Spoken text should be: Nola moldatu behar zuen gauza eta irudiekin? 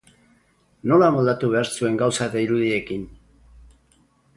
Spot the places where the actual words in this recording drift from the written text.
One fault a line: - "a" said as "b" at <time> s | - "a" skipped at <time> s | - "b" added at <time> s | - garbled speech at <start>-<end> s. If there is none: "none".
none